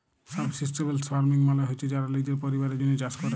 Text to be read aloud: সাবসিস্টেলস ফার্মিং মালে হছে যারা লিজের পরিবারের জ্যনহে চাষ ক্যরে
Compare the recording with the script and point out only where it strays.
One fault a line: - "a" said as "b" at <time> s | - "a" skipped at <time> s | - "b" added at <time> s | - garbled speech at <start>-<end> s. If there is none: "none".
none